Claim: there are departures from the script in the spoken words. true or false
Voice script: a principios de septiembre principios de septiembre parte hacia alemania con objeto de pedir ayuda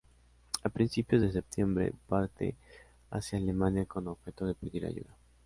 true